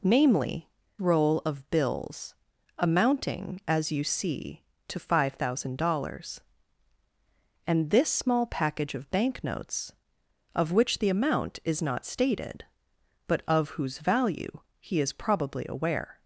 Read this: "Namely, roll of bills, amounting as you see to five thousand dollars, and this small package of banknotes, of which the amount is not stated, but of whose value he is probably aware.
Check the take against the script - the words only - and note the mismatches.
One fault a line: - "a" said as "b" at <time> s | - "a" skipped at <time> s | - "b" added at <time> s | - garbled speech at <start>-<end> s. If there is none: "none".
none